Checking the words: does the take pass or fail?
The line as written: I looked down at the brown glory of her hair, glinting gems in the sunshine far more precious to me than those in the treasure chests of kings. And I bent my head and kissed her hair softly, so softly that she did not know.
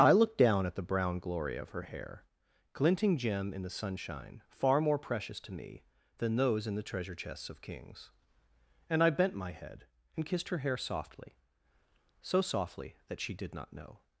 fail